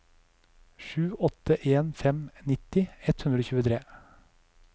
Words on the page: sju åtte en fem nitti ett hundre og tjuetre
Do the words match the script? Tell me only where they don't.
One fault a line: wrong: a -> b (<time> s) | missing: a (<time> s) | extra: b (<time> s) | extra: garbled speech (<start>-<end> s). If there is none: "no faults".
no faults